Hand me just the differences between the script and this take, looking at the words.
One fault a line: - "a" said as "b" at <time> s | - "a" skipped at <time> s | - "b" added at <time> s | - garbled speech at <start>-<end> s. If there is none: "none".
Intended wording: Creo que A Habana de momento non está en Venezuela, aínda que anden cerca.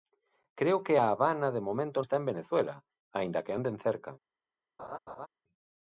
- "non" skipped at 2.0 s